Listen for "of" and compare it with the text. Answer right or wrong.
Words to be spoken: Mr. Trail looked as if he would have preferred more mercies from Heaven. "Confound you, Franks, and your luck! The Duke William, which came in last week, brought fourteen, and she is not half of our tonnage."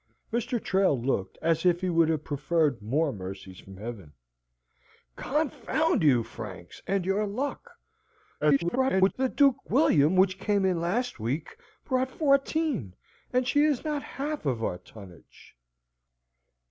right